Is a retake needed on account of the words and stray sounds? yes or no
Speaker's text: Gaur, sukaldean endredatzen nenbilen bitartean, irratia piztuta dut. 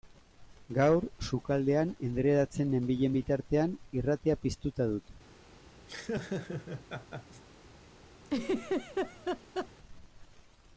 yes